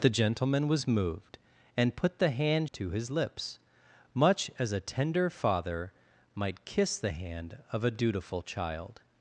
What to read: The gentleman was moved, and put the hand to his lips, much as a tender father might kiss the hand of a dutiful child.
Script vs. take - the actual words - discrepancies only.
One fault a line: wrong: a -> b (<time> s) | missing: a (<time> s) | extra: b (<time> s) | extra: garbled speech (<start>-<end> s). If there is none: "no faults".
no faults